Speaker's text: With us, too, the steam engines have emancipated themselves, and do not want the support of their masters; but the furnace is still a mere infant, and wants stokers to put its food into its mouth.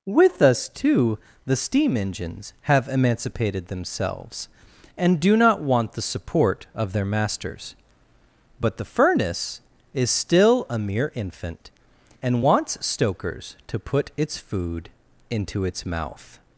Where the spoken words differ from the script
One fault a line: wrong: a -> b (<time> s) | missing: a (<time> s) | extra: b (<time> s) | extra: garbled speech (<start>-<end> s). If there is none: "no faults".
no faults